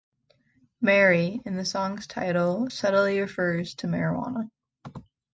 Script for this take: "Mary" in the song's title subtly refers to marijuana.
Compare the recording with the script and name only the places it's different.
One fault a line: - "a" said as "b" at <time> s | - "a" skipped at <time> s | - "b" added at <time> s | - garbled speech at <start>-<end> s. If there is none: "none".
none